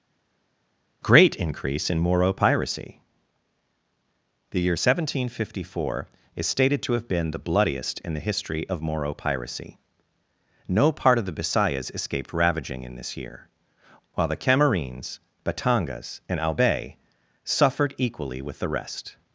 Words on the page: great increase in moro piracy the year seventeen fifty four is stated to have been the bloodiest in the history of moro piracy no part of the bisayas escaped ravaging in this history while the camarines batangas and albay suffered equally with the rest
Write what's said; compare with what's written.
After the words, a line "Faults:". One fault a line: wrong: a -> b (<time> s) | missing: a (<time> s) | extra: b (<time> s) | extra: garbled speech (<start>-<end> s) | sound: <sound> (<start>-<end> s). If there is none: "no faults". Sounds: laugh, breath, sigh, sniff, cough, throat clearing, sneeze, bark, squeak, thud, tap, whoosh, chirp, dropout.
great increase in moro piracy the year seventeen fifty four is stated to have been the bloodiest in the history of moro piracy no part of the bisayas escaped ravaging in this year while the camarines batangas and albay suffered equally with the rest
Faults:
wrong: history -> year (13.2 s)